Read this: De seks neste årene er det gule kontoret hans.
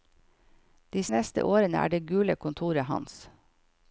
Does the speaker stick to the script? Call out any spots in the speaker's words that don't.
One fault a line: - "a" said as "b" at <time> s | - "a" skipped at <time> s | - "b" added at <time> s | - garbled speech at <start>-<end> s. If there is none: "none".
- "seks" skipped at 1.0 s